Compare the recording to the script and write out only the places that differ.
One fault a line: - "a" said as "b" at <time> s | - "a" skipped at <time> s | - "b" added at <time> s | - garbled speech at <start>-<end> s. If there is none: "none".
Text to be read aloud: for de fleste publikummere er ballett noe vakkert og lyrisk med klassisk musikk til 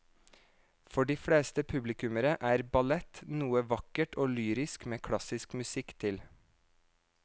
none